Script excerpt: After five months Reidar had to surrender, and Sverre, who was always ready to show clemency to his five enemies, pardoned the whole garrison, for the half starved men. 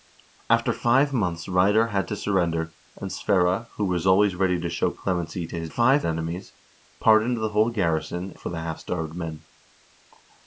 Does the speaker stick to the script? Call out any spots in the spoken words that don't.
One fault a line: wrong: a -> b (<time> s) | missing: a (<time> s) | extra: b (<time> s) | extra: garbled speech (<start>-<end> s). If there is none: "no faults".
no faults